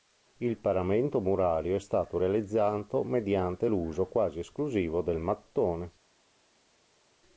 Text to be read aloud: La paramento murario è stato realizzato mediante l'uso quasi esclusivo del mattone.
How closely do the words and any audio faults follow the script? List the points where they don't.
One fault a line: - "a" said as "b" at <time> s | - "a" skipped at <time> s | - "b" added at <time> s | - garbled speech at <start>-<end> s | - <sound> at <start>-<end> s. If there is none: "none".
- "La" said as "Il" at 0.4 s